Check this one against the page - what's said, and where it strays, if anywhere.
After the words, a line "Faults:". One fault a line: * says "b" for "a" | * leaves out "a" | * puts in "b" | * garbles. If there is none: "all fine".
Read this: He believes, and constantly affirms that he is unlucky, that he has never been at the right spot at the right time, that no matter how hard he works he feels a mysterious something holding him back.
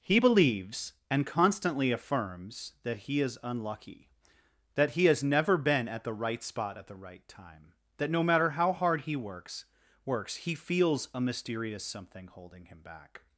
He believes, and constantly affirms that he is unlucky, that he has never been at the right spot at the right time, that no matter how hard he works works he feels a mysterious something holding him back.
Faults:
* puts in "works"